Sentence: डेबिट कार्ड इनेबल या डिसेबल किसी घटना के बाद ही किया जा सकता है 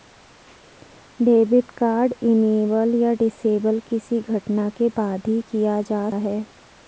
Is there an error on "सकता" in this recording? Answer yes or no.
yes